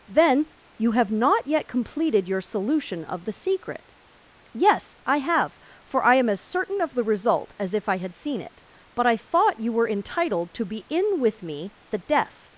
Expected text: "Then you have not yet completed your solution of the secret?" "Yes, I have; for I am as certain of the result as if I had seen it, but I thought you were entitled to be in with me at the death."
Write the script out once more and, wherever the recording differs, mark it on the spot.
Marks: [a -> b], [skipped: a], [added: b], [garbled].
"Then you have not yet completed your solution of the secret?" "Yes, I have; for I am as certain of the result as if I had seen it, but I thought you were entitled to be in with me [skipped: at] the death."